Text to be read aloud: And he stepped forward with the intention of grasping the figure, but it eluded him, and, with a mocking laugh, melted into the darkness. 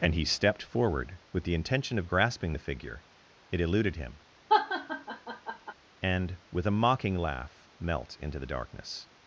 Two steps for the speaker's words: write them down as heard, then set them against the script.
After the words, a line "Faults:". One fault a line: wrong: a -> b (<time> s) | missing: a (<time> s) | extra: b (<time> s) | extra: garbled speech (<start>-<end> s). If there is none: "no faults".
And he stepped forward with the intention of grasping the figure, it eluded him, and, with a mocking laugh, melt into the darkness.
Faults:
missing: but (3.0 s)
wrong: melted -> melt (7.8 s)